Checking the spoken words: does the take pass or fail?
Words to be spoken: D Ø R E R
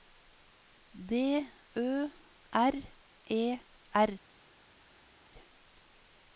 pass